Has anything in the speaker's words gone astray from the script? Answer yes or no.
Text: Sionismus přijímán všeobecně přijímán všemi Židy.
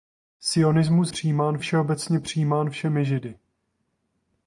no